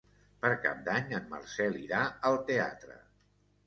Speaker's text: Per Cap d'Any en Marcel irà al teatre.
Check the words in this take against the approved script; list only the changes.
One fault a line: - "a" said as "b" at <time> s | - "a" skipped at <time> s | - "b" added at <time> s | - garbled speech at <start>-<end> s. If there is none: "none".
none